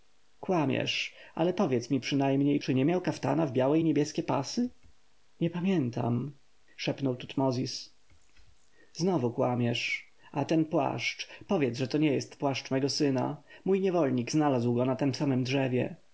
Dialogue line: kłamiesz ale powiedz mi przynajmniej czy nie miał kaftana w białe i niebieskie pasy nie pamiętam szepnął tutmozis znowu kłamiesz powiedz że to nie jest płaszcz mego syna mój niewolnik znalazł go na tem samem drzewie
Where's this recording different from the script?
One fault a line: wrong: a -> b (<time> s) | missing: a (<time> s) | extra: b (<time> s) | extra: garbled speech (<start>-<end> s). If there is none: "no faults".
extra: a ten płaszcz (10.3 s)